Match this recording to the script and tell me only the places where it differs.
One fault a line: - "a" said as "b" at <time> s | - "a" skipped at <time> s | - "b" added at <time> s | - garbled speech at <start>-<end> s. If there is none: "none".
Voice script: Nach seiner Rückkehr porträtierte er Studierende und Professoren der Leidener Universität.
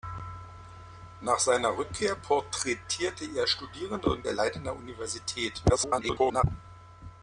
- "Professoren" skipped at 4.2 s
- garbled speech at 5.7-6.4 s